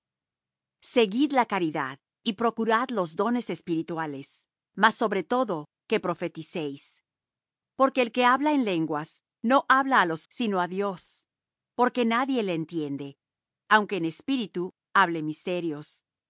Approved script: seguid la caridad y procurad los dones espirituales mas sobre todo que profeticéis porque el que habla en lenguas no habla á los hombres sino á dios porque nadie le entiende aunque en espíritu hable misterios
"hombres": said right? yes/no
no